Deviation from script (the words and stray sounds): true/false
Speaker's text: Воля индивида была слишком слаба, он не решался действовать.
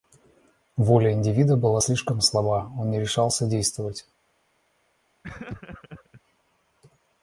true